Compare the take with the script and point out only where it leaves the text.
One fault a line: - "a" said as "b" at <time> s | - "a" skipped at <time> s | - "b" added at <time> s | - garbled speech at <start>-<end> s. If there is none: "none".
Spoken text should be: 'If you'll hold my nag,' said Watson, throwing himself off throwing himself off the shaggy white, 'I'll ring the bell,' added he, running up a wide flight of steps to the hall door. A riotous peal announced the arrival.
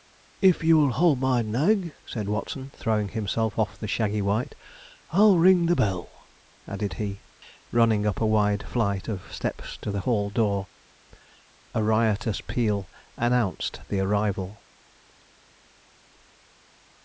- "throwing himself off" skipped at 3.8 s